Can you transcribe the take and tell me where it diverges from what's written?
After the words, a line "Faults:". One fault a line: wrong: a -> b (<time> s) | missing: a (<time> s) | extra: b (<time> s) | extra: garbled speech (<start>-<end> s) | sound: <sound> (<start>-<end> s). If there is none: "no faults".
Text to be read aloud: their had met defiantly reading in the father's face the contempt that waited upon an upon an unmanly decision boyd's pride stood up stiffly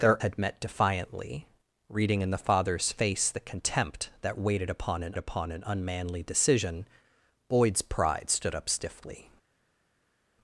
their had met defiantly reading in the father's face the contempt that waited upon an upon an unmanly decision boyd's pride stood up stiffly
Faults:
no faults